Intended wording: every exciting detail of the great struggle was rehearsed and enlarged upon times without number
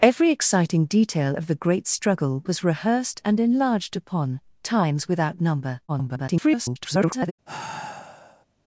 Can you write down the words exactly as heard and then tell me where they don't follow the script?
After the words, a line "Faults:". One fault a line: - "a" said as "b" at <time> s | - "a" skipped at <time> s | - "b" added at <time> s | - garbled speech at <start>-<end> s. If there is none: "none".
every exciting detail of the great struggle was rehearsed and enlarged upon times without number [garbled]
Faults:
- garbled speech at 5.9-7.3 s